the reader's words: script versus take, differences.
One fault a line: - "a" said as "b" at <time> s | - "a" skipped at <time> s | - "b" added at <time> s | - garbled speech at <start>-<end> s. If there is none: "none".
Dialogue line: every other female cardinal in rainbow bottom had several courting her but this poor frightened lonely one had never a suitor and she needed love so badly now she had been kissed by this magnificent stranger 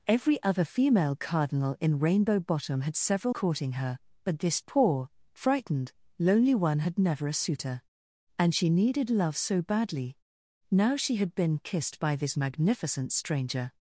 none